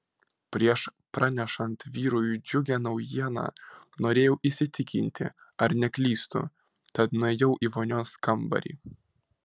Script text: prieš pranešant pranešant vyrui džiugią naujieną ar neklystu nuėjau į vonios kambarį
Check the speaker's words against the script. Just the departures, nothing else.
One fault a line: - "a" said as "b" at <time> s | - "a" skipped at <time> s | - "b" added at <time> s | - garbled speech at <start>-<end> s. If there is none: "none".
- "pranešant" skipped at 1.8 s
- "norėjau įsitikinti" added at 4.0 s
- "tad" added at 7.0 s